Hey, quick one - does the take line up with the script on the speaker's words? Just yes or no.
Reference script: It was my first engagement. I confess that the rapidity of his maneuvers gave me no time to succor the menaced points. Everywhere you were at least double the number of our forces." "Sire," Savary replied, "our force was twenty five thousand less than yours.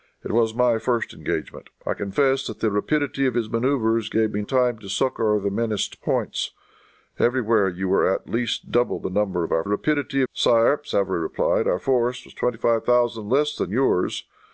no